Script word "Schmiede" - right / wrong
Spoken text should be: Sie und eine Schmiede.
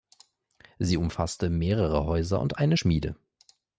right